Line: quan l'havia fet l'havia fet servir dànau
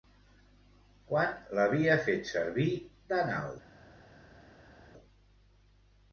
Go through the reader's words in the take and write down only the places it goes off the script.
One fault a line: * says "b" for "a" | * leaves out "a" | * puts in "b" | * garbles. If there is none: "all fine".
* leaves out "l'havia fet"